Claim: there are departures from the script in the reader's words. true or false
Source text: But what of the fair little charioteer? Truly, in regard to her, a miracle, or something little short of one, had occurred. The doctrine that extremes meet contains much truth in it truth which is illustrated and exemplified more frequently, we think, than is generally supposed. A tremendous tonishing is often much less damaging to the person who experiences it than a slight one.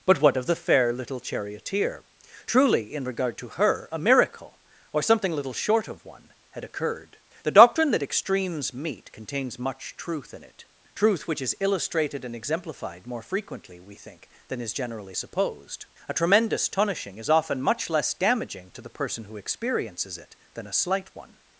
false